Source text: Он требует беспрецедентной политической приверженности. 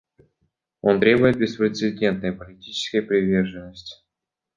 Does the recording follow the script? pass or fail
pass